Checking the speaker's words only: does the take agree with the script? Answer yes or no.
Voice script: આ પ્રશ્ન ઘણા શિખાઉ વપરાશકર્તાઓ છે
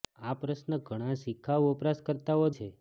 yes